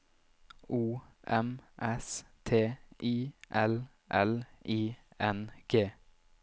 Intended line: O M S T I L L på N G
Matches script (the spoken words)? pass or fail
fail